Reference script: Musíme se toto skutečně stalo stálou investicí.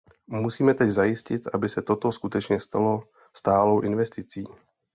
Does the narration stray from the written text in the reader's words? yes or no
yes